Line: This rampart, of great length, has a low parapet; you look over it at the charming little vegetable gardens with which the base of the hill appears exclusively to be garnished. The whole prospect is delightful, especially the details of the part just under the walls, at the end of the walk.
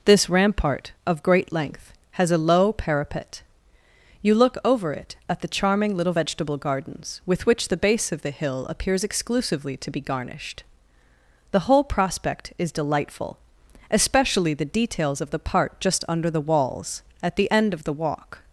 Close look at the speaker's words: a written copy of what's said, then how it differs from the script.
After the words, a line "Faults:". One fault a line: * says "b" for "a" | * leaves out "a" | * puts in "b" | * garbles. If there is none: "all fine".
This rampart, of great length, has a low parapet; you look over it at the charming little vegetable gardens with which the base of the hill appears exclusively to be garnished. The whole prospect is delightful, especially the details of the part just under the walls, at the end of the walk.
Faults:
all fine